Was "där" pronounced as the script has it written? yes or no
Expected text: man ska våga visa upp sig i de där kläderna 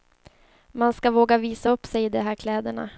no